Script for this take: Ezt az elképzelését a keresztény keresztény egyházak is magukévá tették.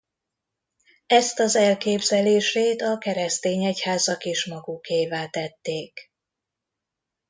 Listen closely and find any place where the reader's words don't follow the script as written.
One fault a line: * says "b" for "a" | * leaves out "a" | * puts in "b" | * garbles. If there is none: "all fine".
* leaves out "keresztény"